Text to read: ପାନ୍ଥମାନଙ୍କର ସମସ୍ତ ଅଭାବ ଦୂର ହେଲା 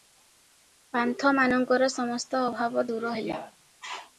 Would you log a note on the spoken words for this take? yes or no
no